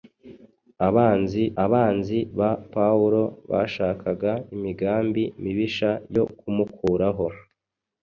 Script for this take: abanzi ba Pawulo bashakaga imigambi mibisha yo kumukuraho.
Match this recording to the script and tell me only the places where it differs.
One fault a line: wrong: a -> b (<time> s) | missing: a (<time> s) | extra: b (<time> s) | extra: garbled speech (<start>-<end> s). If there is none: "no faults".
extra: abanzi (1.6 s)